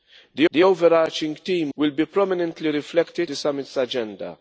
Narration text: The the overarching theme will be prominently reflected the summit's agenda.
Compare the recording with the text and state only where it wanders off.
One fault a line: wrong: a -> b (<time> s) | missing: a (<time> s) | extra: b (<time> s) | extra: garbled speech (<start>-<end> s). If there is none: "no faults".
no faults